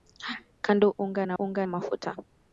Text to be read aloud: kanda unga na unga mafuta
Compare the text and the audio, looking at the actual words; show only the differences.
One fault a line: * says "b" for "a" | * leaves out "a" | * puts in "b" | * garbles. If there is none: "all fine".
all fine